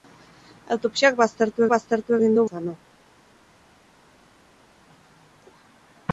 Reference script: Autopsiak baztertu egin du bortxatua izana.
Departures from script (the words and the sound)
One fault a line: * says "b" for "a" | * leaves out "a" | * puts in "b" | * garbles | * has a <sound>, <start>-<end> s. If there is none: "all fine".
* puts in "baztertu"
* leaves out "bortxatua"